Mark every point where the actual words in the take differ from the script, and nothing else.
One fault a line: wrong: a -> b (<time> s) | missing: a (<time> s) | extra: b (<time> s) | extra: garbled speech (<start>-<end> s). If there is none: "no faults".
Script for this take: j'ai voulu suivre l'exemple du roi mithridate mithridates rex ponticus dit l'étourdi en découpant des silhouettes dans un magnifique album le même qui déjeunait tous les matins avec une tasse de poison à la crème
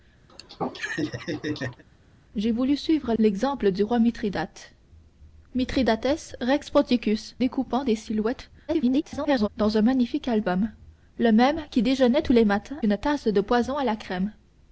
missing: dit l'étourdi en (7.4 s)
extra: garbled speech (8.7-9.5 s)
missing: avec (12.8 s)